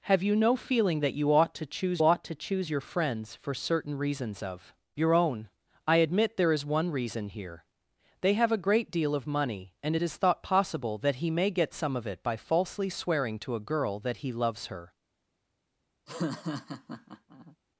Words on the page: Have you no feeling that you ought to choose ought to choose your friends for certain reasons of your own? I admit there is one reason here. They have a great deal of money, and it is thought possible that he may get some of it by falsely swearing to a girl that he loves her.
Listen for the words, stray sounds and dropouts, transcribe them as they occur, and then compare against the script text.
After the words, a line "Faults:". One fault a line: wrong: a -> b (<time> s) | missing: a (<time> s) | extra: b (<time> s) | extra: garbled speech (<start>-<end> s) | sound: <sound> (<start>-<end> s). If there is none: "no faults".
Have you no feeling that you ought to choose ought to choose your friends for certain reasons of your own? I admit there is one reason here. They have a great deal of money, and it is thought possible that he may get some of it by falsely swearing to a girl that he loves her.
Faults:
sound: laugh (16.1-17.6 s)